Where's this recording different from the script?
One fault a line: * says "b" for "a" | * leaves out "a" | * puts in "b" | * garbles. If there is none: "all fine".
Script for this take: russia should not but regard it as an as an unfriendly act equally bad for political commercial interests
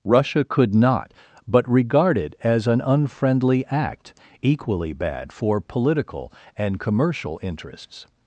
* says "could" for "should"
* leaves out "as an"
* puts in "and"